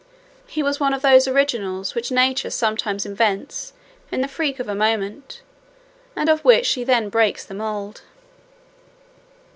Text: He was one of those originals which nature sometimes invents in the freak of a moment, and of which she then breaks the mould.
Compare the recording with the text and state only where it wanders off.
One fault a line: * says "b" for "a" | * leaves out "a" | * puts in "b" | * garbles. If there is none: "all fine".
all fine